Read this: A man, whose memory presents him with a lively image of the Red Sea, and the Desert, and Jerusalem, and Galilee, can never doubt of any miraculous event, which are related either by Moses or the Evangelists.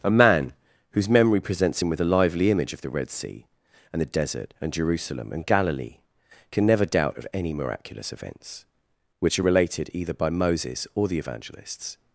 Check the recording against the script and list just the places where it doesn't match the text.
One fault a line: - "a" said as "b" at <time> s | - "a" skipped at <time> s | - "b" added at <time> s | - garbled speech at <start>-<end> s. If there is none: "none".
- "event" said as "events" at 8.1 s